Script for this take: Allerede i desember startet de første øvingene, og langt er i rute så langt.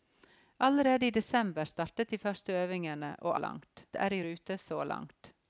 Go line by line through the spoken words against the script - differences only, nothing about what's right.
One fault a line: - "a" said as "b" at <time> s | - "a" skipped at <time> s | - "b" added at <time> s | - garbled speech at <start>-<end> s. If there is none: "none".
none